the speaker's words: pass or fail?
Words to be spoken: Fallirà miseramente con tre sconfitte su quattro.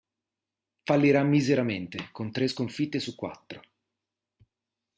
pass